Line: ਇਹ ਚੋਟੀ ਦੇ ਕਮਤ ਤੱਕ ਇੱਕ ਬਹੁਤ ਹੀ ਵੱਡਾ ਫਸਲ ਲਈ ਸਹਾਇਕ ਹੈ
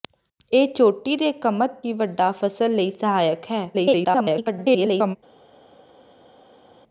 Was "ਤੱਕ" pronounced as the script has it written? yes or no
no